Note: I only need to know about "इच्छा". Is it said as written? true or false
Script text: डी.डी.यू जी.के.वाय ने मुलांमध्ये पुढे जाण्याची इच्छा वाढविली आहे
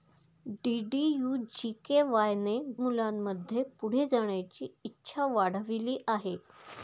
true